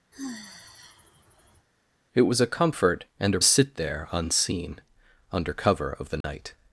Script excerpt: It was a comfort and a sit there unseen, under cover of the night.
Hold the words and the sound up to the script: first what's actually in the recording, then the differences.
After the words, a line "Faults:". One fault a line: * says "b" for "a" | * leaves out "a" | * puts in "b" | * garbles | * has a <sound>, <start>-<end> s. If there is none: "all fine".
It was a comfort and a sit there unseen, under cover of the night.
Faults:
* has a sigh, 0.1-1.7 s
* has a dropout, 6.2-6.2 s